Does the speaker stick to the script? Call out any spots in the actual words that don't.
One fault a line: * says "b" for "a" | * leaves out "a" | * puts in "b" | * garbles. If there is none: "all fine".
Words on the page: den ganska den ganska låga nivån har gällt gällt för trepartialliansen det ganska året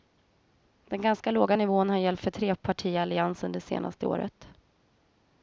* leaves out "den ganska"
* leaves out "gällt"
* says "senaste" for "ganska"